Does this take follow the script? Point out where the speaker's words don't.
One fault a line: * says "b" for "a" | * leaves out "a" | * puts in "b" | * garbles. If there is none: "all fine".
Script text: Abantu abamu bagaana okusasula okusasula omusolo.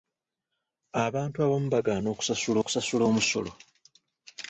all fine